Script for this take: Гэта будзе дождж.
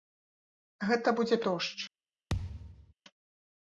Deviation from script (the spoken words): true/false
false